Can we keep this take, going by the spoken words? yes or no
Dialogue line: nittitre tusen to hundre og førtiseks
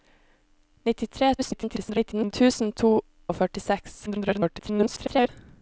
no